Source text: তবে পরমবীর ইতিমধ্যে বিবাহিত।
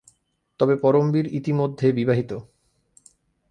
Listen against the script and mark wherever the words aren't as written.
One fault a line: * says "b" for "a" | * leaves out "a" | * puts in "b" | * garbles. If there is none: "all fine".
all fine